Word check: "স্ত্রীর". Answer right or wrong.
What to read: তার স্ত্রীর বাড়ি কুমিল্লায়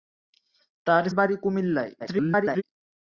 wrong